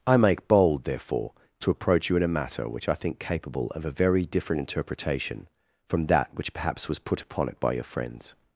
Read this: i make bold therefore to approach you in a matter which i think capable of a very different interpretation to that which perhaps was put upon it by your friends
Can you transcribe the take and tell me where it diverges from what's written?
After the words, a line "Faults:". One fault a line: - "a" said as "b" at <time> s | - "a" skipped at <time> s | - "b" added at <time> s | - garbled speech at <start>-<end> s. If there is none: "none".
i make bold therefore to approach you in a matter which i think capable of a very different interpretation from that which perhaps was put upon it by your friends
Faults:
- "to" said as "from" at 5.9 s